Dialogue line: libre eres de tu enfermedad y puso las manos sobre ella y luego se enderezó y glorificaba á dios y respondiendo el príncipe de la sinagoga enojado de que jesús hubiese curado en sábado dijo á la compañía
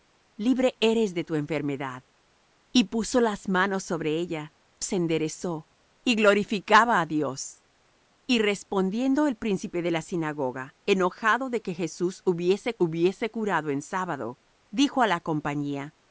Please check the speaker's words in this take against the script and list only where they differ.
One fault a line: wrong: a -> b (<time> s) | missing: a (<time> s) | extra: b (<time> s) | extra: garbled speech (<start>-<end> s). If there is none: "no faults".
missing: y luego (4.5 s)
extra: hubiese (12.8 s)